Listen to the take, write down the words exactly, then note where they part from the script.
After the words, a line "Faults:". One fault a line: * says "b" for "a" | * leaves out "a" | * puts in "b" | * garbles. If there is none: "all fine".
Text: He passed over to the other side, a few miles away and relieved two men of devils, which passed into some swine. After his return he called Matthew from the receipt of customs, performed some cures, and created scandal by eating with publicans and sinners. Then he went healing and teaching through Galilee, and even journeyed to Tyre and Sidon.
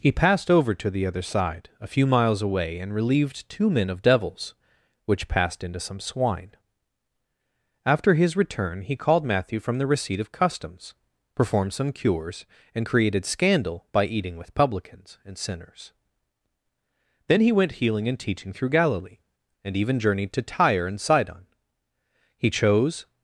He passed over to the other side, a few miles away and relieved two men of devils, which passed into some swine. After his return he called Matthew from the receipt of customs, performed some cures, and created scandal by eating with publicans and sinners. Then he went healing and teaching through Galilee, and even journeyed to Tyre and Sidon. He chose
Faults:
* puts in "He chose"